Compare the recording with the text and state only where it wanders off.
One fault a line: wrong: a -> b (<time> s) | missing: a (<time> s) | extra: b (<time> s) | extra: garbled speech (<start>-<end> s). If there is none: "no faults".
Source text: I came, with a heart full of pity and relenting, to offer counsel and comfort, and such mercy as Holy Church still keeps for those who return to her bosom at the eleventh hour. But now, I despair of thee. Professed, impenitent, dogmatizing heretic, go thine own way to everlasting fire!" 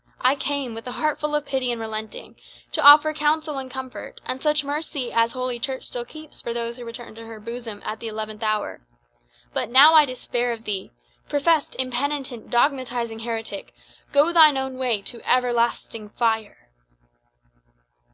no faults